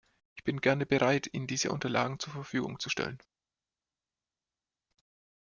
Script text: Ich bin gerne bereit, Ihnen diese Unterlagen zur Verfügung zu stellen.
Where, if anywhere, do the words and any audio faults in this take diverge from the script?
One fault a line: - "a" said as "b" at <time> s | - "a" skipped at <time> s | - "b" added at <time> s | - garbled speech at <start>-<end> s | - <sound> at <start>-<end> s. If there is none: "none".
none